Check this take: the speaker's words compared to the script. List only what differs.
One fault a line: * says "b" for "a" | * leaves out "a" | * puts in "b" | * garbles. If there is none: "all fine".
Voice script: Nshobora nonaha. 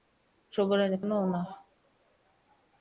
all fine